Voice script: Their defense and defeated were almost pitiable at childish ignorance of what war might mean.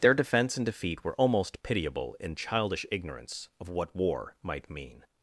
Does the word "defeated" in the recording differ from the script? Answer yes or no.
yes